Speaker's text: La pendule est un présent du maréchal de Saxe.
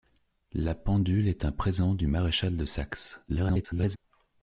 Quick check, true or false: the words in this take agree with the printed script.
false